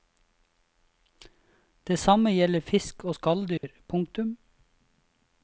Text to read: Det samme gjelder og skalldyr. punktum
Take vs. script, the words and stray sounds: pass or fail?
fail